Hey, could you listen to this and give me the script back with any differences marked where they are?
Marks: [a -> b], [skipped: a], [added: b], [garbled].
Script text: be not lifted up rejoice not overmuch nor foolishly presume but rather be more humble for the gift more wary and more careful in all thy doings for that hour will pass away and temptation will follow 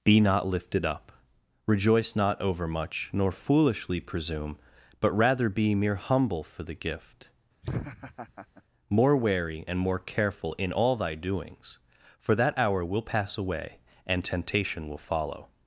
be not lifted up rejoice not overmuch nor foolishly presume but rather be [more -> mere] humble for the gift more wary and more careful in all thy doings for that hour will pass away and temptation will follow